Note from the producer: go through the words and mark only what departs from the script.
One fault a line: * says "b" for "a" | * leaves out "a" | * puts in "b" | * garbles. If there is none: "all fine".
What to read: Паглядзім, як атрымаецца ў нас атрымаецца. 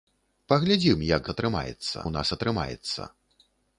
all fine